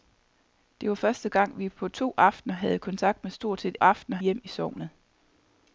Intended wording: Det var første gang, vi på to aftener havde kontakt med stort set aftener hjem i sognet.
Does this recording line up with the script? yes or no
yes